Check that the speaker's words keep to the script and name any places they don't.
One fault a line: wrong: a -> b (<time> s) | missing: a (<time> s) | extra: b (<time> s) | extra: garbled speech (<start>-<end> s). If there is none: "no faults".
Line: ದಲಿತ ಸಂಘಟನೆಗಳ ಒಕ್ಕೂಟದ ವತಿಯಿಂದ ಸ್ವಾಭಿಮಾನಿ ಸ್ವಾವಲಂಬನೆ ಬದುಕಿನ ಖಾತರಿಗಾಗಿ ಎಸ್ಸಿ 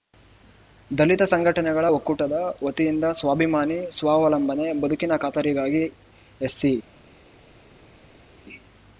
no faults